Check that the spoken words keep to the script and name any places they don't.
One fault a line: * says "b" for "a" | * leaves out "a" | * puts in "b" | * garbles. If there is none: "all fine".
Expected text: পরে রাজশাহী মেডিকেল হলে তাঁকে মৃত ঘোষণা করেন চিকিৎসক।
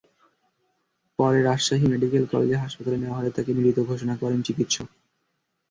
* puts in "কলেজ হাসপাতালে নেওয়া"